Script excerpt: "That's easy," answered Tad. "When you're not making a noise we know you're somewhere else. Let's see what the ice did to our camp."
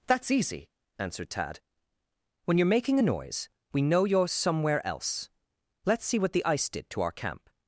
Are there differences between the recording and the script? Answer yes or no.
yes